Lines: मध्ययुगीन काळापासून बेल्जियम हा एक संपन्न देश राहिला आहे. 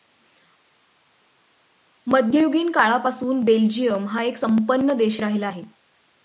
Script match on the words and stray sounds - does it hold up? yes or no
yes